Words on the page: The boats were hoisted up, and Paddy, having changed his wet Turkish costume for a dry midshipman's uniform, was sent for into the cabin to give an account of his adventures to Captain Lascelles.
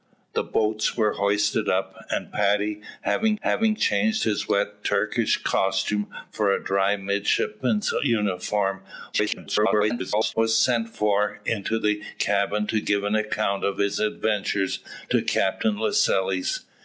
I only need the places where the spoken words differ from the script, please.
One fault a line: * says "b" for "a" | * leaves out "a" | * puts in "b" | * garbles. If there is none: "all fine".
* puts in "having"
* garbles